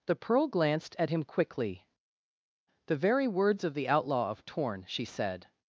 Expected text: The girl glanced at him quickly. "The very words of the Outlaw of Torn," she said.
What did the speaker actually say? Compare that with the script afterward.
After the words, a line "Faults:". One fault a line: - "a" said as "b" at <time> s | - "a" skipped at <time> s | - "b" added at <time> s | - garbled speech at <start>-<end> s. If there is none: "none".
The pearl glanced at him quickly. "The very words of the Outlaw of Torn," she said.
Faults:
- "girl" said as "pearl" at 0.1 s